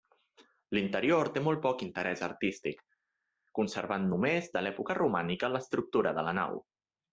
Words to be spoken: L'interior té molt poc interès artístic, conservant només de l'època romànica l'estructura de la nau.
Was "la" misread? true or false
false